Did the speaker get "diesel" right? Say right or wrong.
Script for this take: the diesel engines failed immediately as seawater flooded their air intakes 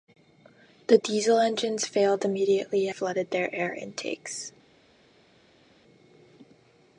right